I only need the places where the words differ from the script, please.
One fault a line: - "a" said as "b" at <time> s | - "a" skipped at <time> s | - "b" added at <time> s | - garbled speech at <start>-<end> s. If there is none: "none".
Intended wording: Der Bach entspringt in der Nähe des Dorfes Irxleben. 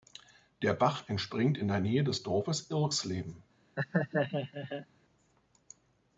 none